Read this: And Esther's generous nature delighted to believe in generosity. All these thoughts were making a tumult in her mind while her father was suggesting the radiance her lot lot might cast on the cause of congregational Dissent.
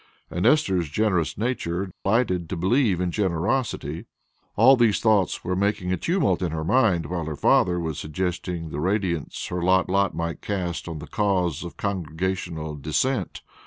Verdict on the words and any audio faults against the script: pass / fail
fail